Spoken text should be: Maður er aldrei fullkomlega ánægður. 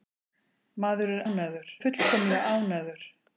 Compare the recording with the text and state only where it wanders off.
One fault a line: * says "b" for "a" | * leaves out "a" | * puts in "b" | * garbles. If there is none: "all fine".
* says "ánægður" for "aldrei"